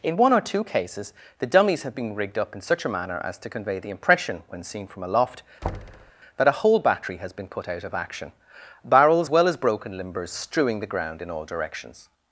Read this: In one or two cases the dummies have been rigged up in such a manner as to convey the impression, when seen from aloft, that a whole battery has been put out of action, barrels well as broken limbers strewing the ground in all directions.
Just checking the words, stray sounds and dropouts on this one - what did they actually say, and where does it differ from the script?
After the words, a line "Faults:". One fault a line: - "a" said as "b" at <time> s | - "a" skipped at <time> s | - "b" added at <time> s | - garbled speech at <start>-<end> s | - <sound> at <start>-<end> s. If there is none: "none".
In one or two cases the dummies have been rigged up in such a manner as to convey the impression, when seen from aloft, that a whole battery has been put out of action, barrels well as broken limbers strewing the ground in all directions.
Faults:
- thud at 5.6-6.1 s